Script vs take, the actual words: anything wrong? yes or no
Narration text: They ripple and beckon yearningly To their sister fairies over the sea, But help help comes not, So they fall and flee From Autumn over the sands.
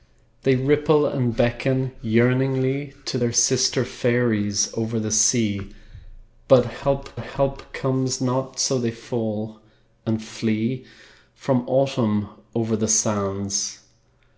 no